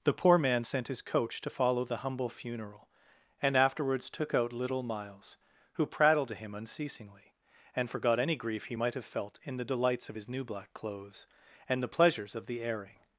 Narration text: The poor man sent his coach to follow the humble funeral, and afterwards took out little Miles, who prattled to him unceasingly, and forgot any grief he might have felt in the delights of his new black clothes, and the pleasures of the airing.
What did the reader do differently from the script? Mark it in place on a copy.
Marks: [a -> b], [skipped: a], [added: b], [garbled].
The poor man sent his coach to follow the humble funeral, and afterwards took out little Miles, who prattled to him unceasingly, and forgot any grief he might have felt in the delights of his new black clothes, and the pleasures of the airing.